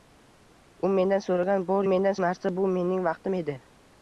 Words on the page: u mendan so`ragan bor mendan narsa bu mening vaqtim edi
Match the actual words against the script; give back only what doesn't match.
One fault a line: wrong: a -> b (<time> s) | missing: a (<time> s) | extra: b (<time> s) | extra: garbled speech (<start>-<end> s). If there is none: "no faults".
no faults